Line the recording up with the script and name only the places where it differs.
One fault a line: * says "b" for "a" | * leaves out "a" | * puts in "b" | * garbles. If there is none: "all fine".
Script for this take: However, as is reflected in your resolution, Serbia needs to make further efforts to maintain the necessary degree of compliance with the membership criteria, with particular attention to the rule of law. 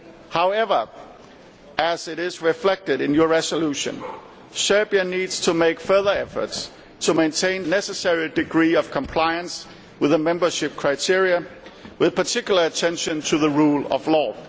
* leaves out "the"